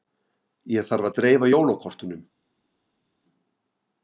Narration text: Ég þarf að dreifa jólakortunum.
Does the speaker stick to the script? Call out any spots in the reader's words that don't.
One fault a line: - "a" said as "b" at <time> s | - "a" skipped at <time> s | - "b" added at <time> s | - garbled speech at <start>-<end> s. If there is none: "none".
none